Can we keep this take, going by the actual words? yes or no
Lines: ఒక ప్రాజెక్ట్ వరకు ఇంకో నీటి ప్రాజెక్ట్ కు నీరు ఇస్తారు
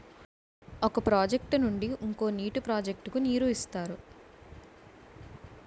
no